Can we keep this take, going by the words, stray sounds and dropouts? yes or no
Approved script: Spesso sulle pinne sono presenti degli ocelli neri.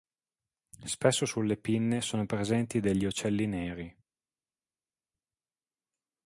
yes